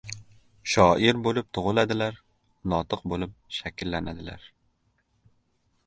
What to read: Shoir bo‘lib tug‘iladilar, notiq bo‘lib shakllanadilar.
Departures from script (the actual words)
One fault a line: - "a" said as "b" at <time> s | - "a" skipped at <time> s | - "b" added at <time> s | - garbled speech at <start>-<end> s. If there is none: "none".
none